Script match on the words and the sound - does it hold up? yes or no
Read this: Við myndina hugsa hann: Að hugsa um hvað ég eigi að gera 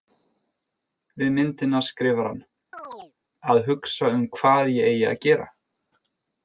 no